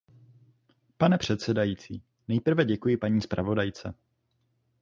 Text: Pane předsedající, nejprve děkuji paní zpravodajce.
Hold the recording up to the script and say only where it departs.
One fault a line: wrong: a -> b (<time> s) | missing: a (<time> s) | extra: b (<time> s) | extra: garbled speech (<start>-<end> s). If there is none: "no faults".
no faults